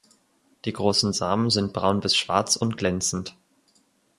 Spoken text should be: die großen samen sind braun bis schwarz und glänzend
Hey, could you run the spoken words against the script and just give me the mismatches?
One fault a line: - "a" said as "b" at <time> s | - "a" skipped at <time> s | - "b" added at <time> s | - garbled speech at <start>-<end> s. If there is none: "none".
none